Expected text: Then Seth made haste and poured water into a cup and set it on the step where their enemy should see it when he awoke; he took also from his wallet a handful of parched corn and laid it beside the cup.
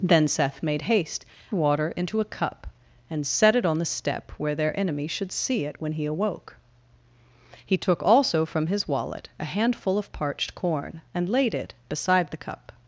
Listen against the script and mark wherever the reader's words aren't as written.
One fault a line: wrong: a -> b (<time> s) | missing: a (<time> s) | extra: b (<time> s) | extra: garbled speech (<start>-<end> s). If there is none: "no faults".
missing: and poured (1.2 s)